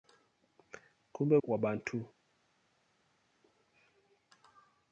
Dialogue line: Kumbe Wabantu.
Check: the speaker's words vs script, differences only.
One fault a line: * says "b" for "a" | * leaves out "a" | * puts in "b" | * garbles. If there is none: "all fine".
all fine